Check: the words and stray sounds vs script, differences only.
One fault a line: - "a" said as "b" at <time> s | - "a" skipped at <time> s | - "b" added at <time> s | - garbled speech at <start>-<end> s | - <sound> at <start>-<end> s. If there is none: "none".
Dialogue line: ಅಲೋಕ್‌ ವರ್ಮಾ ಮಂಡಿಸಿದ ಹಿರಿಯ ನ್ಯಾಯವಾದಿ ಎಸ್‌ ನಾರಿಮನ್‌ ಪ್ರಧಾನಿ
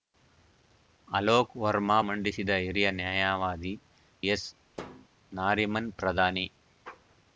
- thud at 4.7-5.1 s